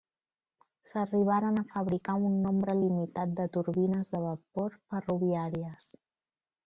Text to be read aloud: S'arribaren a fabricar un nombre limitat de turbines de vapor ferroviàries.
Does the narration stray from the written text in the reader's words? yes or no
no